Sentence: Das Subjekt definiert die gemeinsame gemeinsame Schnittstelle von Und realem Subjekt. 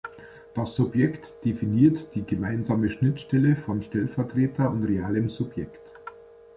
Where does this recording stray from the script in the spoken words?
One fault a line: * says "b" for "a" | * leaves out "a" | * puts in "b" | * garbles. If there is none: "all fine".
* leaves out "gemeinsame"
* puts in "Stellvertreter"